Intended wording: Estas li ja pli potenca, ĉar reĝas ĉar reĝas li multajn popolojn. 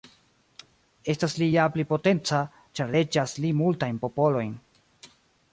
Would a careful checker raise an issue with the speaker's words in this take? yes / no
yes